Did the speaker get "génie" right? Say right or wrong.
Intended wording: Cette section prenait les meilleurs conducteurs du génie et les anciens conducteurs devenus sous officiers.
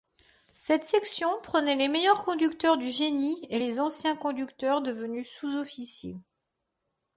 right